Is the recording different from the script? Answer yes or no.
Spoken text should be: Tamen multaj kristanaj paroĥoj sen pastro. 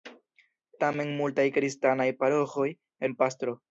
no